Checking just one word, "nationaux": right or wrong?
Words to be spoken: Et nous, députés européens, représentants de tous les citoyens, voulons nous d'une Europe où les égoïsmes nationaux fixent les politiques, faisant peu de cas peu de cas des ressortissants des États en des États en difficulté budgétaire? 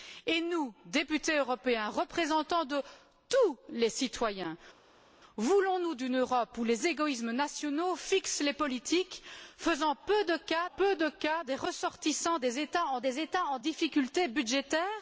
right